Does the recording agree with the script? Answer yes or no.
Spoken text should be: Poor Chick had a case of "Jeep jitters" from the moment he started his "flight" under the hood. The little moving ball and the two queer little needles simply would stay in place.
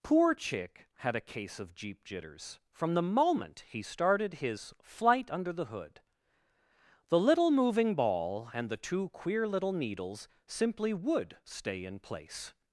yes